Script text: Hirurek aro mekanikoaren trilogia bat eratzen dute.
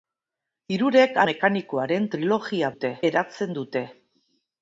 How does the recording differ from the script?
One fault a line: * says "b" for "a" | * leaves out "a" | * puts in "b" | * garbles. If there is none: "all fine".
* leaves out "aro"
* says "dute" for "bat"